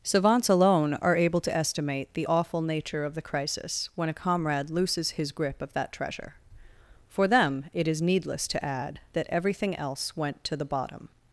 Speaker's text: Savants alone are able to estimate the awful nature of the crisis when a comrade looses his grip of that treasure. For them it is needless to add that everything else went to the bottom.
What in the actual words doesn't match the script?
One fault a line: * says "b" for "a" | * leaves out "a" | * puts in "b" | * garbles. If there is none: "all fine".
all fine